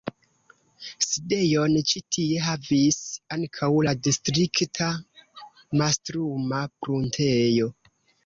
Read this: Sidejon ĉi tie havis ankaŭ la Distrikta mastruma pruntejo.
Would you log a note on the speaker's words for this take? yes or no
no